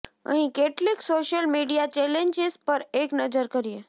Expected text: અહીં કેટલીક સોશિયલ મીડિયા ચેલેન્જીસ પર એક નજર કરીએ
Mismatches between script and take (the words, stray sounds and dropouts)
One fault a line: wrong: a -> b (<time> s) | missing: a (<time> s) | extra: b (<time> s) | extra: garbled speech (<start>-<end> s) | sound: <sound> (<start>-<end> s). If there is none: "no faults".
no faults